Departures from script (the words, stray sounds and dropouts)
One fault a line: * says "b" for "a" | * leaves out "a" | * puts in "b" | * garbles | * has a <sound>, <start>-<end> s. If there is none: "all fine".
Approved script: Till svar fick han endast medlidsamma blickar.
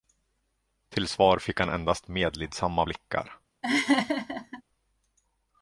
* has a laugh, 3.6-4.6 s